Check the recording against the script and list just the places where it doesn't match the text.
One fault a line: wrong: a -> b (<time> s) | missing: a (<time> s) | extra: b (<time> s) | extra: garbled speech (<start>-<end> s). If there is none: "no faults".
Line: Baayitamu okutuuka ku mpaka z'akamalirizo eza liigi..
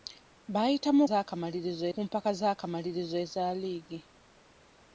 wrong: okutuuka -> z'akamalirizo (1.1 s)